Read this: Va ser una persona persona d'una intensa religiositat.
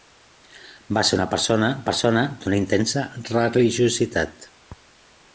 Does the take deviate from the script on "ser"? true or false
false